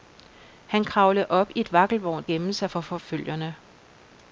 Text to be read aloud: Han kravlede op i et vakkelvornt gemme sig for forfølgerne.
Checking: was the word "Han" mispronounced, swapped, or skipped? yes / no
no